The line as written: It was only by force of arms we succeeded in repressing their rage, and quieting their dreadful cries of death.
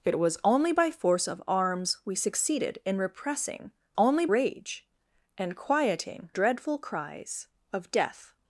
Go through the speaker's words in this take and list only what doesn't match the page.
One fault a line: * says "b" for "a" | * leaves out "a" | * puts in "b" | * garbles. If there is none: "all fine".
* says "only" for "their"
* leaves out "their"